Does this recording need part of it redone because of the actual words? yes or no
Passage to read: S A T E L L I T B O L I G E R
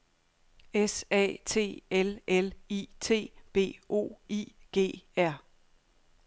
yes